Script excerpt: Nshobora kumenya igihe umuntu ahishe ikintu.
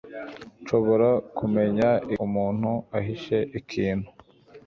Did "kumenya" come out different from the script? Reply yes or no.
no